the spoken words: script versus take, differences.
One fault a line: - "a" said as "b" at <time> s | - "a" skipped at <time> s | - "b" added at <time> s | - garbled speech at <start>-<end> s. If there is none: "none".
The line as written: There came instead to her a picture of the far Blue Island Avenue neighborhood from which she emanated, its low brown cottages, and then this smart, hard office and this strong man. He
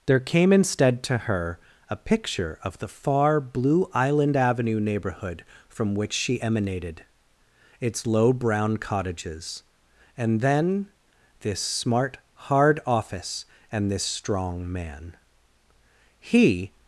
none